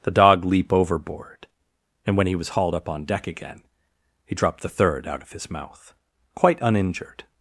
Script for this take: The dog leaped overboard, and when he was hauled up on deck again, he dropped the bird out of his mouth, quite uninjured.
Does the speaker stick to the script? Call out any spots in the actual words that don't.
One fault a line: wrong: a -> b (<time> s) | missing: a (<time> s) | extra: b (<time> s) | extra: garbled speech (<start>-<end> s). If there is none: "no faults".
wrong: leaped -> leap (0.5 s)
wrong: bird -> third (4.7 s)